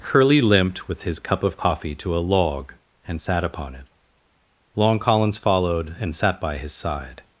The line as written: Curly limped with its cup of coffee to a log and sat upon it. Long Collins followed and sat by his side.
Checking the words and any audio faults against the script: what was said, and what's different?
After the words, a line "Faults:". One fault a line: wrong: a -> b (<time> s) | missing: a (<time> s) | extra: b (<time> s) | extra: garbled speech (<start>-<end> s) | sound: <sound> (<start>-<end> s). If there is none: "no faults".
Curly limped with his cup of coffee to a log and sat upon it. Long Collins followed and sat by his side.
Faults:
wrong: its -> his (1.0 s)